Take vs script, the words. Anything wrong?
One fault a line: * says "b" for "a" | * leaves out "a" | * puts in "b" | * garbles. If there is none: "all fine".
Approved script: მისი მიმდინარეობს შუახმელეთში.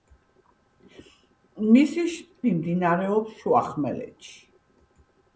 all fine